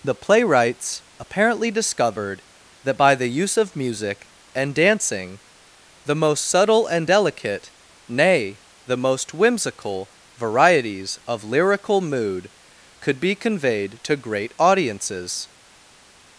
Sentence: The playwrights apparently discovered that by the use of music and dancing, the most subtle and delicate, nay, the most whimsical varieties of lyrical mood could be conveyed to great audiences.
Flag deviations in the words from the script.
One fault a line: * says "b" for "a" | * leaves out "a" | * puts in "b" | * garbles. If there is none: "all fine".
all fine